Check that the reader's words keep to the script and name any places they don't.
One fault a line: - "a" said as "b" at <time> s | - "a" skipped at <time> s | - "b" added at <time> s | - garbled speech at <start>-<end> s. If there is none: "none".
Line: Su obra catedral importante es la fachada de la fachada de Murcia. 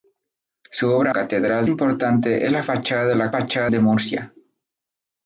none